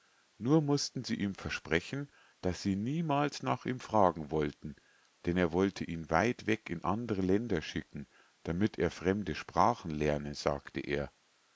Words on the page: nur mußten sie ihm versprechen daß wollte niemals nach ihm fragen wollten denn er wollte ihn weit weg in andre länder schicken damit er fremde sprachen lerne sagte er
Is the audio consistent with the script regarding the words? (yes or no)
no